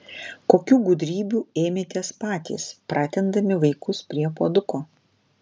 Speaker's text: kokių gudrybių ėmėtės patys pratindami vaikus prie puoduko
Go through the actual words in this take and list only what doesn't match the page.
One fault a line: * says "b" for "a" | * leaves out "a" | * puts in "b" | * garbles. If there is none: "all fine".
all fine